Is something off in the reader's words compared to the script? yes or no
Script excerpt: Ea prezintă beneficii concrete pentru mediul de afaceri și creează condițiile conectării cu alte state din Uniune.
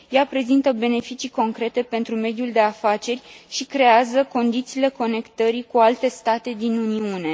no